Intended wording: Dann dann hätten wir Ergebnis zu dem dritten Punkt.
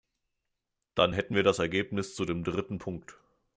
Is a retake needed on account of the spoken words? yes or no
yes